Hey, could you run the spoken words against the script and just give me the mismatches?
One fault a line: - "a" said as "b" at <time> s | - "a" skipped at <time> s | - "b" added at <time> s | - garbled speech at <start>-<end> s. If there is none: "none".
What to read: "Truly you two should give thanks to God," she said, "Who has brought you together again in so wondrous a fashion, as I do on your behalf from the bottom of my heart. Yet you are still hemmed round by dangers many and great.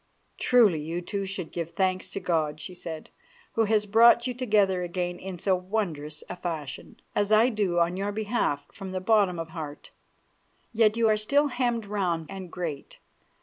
- "my" skipped at 9.5 s
- "by dangers many" skipped at 12.2 s